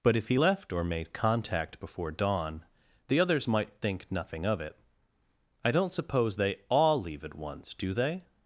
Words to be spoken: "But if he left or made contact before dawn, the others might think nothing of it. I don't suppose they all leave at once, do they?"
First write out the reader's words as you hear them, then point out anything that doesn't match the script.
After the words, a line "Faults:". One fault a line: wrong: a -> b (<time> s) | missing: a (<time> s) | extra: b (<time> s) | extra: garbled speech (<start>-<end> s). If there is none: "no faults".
"But if he left or made contact before dawn, the others might think nothing of it. I don't suppose they all leave at once, do they?"
Faults:
no faults